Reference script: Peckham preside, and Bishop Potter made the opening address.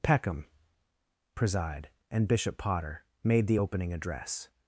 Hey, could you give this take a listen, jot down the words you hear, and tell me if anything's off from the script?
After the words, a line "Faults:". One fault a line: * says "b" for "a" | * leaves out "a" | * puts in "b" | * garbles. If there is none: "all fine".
Peckham preside, and Bishop Potter made the opening address.
Faults:
all fine